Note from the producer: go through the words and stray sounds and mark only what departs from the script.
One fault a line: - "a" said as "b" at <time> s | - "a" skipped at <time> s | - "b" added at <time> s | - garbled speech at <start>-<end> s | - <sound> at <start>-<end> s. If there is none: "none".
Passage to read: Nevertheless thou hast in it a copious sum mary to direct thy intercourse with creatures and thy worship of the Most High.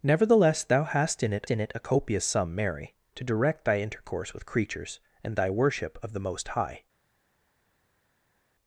- "in it" added at 1.5 s